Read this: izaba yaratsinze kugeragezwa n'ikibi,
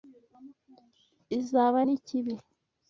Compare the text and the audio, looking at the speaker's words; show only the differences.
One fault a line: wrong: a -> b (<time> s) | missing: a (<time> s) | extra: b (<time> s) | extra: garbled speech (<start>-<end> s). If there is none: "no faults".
missing: yaratsinze kugeragezwa (1.8 s)